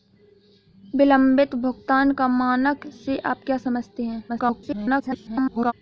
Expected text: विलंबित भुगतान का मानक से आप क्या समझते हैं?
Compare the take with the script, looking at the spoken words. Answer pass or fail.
fail